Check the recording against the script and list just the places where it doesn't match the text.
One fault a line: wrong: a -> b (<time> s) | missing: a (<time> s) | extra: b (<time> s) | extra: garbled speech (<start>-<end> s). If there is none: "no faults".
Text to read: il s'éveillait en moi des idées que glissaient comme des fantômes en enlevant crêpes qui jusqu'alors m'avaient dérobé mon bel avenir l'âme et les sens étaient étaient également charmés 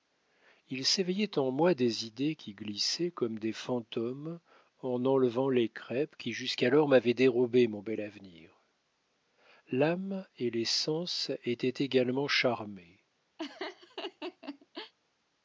wrong: que -> qui (2.4 s)
extra: les (5.5 s)
missing: étaient (11.8 s)